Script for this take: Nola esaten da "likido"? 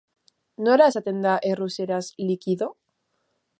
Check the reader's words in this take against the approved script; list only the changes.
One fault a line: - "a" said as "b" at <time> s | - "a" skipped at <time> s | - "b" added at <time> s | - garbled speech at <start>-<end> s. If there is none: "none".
- "errusieraz" added at 1.5 s